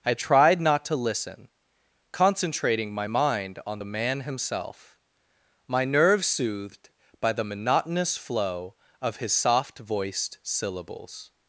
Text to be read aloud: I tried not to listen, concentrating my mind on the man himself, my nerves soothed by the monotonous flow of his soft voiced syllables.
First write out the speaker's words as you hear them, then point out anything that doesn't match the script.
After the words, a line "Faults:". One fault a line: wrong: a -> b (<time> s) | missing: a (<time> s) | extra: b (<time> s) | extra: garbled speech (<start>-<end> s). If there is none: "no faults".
I tried not to listen, concentrating my mind on the man himself, my nerves soothed by the monotonous flow of his soft voiced syllables.
Faults:
no faults